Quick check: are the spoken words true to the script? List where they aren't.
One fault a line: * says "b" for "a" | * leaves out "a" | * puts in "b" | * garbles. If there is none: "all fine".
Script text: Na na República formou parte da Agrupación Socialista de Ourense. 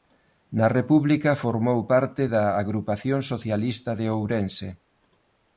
* leaves out "na"